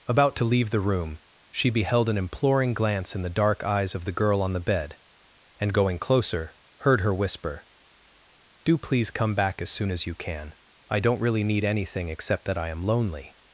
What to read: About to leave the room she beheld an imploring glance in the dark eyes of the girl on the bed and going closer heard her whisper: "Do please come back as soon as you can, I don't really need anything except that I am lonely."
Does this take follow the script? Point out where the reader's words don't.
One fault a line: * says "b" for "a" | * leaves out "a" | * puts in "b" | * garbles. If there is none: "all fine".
all fine